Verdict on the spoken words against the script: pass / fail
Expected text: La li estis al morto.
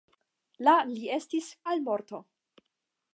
pass